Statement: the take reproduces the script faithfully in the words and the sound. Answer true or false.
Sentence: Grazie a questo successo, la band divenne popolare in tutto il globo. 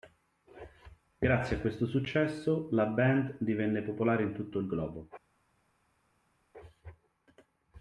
true